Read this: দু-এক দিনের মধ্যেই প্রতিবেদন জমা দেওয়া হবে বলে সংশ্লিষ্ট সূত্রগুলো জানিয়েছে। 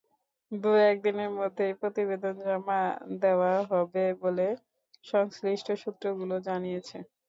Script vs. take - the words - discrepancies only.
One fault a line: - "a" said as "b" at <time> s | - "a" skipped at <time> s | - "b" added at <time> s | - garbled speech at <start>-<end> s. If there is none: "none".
none